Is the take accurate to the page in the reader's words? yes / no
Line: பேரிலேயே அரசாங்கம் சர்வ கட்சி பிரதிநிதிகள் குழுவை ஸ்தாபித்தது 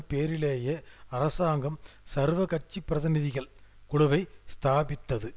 yes